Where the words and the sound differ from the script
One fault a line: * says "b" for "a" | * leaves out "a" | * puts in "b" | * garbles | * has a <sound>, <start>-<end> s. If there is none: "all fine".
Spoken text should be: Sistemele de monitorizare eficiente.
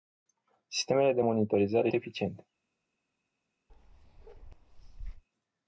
* has a bark, 3.7-5.2 s